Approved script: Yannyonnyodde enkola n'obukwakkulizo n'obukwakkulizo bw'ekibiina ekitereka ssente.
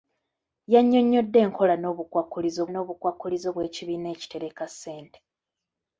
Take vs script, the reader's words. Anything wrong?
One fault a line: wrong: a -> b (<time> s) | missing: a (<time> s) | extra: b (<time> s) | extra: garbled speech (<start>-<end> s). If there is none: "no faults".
no faults